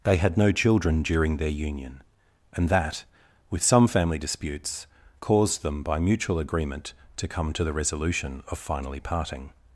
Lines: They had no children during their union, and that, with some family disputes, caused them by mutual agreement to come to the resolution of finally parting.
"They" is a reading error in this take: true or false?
false